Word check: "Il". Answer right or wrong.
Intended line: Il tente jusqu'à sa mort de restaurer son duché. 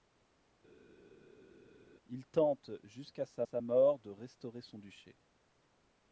right